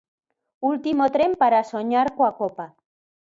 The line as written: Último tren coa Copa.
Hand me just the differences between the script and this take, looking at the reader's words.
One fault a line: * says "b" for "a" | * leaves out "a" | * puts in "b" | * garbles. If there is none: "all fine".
* puts in "para soñar"